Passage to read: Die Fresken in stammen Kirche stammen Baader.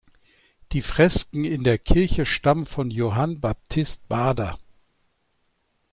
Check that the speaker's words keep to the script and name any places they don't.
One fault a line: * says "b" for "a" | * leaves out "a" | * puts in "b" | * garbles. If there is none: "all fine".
* says "der" for "stammen"
* puts in "von Johann Baptist"